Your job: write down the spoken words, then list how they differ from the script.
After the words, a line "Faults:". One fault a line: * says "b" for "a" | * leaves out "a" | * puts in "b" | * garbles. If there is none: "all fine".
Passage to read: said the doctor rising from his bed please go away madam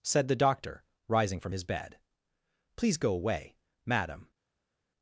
said the doctor rising from his bed please go away madam
Faults:
all fine